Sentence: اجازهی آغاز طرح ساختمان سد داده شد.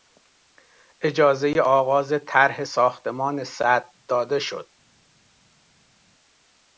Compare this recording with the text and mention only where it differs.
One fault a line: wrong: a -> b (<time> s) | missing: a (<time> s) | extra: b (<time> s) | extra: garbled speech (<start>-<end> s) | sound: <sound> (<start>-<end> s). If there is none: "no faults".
no faults